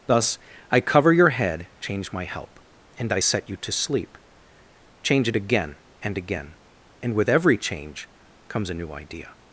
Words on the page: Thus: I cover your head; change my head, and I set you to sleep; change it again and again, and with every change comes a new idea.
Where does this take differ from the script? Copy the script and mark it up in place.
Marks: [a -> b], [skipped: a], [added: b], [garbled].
Thus: I cover your head; change my [head, -> help] and I set you to sleep; change it again and again, and with every change comes a new idea.